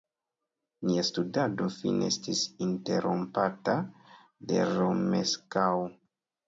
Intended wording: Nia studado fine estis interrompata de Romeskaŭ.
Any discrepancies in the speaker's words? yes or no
no